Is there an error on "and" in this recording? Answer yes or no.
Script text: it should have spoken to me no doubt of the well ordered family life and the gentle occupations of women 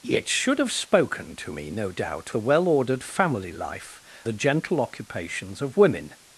yes